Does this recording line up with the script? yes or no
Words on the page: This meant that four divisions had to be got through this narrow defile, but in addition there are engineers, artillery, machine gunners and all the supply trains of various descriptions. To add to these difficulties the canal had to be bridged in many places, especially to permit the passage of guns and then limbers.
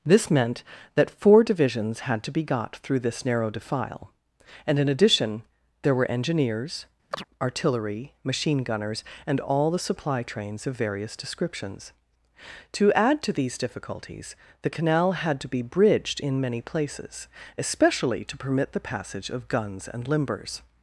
no